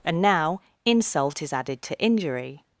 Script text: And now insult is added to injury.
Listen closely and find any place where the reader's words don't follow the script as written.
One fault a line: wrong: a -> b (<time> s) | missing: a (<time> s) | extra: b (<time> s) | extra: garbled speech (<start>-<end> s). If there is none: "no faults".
no faults